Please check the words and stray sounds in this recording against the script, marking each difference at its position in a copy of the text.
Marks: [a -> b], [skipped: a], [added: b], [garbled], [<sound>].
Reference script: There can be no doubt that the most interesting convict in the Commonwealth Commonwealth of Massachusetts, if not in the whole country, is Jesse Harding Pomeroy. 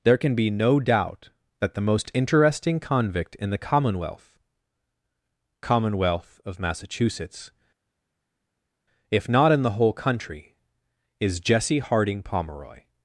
There can be no doubt that the most interesting convict in the Commonwealth Commonwealth of Massachusetts, if not in the whole country, is Jesse Harding Pomeroy.